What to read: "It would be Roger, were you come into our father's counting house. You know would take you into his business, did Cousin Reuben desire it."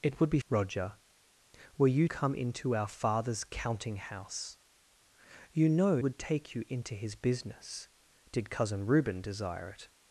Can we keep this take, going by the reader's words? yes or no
yes